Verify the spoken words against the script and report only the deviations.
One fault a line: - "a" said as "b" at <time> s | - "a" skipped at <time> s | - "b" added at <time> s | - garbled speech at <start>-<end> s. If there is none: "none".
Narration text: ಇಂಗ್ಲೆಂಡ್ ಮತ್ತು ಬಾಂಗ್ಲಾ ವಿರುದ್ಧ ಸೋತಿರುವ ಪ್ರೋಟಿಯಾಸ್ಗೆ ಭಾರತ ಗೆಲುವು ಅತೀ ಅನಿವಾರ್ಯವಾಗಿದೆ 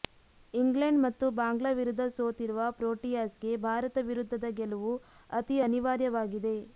- "ವಿರುದ್ಧದ" added at 4.1 s